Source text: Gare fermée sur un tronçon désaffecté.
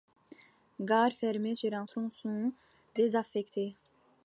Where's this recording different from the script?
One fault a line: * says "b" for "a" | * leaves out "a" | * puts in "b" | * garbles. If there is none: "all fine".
all fine